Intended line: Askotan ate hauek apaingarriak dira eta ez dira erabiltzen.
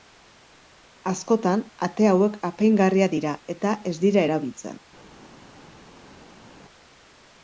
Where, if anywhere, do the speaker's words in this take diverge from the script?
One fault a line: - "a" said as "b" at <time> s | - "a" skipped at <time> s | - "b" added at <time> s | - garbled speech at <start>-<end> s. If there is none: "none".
none